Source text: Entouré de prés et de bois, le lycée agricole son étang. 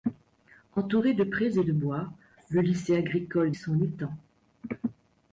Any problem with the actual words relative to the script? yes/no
no